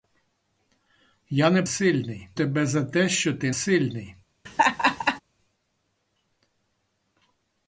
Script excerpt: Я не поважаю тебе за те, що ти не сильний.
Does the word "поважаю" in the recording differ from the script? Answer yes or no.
yes